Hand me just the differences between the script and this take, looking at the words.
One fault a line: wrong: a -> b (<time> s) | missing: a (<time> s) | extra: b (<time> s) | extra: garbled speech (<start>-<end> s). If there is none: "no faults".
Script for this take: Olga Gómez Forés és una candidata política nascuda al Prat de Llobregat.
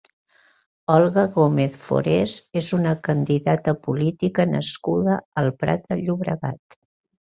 no faults